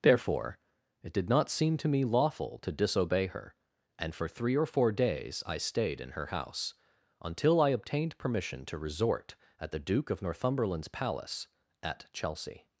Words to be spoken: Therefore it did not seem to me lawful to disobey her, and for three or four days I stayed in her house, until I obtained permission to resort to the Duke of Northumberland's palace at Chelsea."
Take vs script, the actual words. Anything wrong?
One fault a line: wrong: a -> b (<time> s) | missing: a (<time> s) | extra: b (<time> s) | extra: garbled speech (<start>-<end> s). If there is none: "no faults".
wrong: to -> at (9.6 s)